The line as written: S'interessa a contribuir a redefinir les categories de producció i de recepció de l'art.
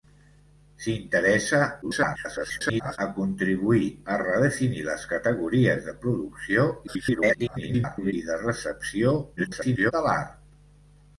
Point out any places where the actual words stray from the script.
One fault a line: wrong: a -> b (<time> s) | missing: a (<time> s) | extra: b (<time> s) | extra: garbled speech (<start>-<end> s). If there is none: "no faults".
extra: garbled speech (1.8-3.0 s)
extra: garbled speech (6.9-8.1 s)
extra: garbled speech (9.4-9.9 s)